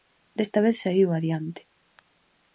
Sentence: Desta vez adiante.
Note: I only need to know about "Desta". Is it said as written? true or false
true